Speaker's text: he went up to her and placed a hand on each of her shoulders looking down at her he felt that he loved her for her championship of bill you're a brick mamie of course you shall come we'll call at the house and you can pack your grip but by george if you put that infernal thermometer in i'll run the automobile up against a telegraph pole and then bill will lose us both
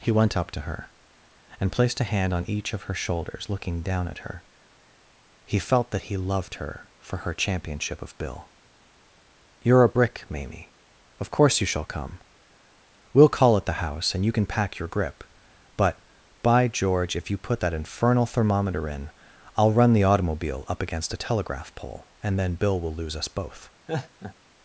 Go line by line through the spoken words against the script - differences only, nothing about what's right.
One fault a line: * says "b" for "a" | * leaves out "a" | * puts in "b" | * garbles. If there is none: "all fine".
all fine